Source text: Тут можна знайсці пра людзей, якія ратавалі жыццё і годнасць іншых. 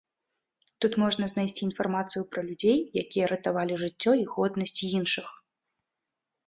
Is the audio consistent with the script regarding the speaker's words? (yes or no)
no